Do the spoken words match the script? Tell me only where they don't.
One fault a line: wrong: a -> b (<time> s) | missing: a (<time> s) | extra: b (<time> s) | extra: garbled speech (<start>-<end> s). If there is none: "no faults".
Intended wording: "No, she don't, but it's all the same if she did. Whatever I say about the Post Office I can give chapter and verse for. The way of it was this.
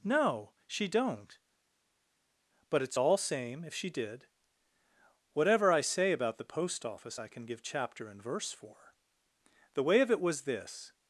missing: the (3.2 s)